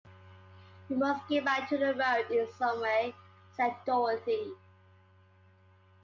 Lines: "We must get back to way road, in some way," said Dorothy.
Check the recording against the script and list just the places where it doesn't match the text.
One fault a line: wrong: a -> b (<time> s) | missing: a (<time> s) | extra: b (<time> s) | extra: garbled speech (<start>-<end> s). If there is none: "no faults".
wrong: way -> the (1.8 s)